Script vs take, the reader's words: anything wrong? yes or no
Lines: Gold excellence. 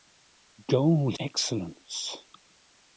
no